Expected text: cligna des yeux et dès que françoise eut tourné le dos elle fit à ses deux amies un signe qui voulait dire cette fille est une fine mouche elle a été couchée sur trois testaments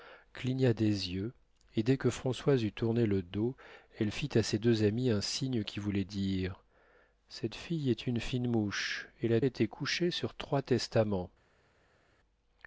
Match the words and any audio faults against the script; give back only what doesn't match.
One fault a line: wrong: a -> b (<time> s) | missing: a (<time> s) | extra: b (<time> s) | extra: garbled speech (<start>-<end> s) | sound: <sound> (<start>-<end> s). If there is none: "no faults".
no faults